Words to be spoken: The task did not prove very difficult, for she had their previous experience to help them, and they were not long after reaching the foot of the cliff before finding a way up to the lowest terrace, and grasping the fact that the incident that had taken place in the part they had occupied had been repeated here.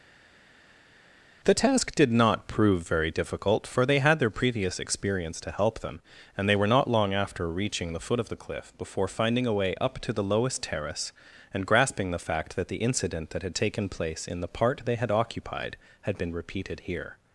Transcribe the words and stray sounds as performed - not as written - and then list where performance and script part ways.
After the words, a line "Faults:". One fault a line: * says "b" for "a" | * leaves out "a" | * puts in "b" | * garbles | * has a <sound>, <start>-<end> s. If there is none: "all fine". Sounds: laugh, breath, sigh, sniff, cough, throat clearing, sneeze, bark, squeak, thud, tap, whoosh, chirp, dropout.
The task did not prove very difficult, for they had their previous experience to help them, and they were not long after reaching the foot of the cliff before finding a way up to the lowest terrace, and grasping the fact that the incident that had taken place in the part they had occupied had been repeated here.
Faults:
* says "they" for "she"